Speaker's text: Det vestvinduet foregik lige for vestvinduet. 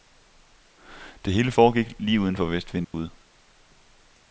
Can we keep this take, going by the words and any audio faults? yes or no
no